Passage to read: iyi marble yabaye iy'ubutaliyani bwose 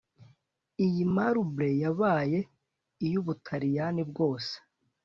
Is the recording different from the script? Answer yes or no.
no